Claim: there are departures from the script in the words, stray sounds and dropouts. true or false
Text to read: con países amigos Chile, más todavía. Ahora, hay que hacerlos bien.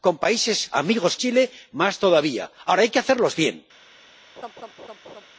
true